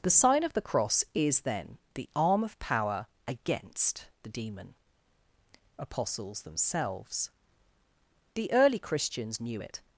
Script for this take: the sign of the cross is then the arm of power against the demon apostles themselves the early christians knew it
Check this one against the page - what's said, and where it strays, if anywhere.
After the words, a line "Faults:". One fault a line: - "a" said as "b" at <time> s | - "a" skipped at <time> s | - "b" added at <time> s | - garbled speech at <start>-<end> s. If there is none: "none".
the sign of the cross is then the arm of power against the demon apostles themselves the early christians knew it
Faults:
none